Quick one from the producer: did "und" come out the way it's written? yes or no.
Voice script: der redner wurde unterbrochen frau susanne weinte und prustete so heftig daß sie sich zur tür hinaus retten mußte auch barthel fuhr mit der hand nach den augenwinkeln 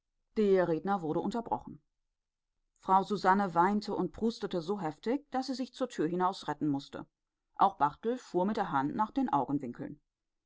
yes